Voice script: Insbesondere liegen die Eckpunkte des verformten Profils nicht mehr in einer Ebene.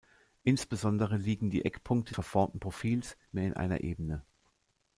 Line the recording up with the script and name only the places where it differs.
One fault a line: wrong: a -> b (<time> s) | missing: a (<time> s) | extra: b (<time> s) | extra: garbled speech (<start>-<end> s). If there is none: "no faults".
missing: des (2.1 s)
missing: nicht (3.0 s)